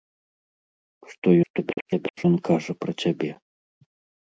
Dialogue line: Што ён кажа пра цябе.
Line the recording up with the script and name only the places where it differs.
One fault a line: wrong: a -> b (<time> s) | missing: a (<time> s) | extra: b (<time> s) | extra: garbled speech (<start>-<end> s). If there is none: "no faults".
extra: garbled speech (1.4-2.3 s)